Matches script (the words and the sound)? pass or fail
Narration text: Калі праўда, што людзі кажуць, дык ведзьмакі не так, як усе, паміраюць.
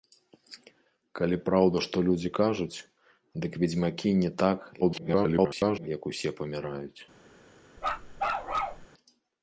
fail